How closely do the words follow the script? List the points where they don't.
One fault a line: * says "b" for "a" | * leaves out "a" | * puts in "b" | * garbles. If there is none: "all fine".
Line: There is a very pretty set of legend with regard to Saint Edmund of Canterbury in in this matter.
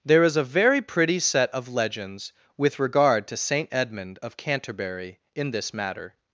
* says "legends" for "legend"
* leaves out "in"